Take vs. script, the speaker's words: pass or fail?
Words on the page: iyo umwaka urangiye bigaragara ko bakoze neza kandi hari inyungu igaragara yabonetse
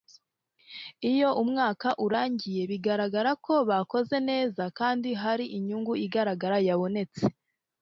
pass